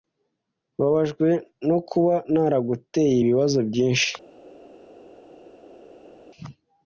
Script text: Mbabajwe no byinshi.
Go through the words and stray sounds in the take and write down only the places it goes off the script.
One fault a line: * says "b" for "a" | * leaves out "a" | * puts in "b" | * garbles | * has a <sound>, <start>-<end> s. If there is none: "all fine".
* puts in "kuba naraguteye ibibazo"